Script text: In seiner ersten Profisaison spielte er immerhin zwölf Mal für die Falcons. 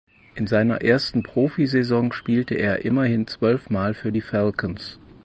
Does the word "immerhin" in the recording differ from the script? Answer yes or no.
no